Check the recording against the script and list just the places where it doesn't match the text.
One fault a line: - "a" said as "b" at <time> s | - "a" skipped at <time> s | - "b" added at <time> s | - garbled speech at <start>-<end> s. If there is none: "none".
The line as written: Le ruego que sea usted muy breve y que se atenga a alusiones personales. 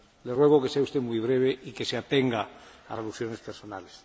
none